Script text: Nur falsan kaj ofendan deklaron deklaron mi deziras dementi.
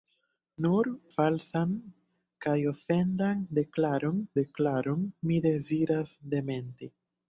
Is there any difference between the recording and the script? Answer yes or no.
no